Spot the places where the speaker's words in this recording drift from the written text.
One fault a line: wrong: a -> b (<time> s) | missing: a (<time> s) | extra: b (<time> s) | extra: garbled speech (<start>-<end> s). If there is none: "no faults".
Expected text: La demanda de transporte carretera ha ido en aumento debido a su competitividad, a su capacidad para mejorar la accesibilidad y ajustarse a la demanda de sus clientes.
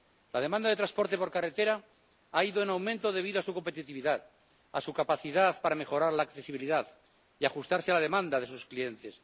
extra: por (1.2 s)